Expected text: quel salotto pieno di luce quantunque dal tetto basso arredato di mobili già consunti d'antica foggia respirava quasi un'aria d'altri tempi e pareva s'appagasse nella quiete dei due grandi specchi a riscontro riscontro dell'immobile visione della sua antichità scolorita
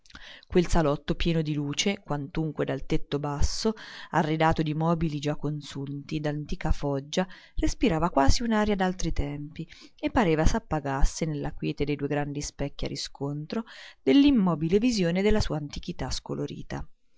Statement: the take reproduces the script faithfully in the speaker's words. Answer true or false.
false